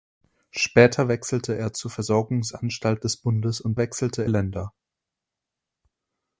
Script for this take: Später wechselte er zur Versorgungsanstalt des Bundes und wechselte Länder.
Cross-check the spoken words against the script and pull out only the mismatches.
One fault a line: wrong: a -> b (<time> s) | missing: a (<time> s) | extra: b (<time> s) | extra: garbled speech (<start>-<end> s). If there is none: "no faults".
no faults